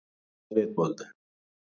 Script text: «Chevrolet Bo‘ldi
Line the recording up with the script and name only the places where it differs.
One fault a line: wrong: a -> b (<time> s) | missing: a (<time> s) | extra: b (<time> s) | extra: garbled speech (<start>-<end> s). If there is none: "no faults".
no faults